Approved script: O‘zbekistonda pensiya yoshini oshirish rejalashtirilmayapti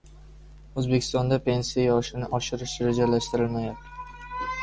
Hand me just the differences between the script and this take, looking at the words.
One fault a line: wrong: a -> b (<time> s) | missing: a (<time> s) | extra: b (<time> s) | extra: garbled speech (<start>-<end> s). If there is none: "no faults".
no faults